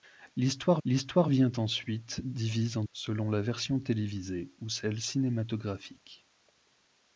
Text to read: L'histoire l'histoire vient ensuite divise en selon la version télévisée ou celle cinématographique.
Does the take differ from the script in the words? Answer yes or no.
no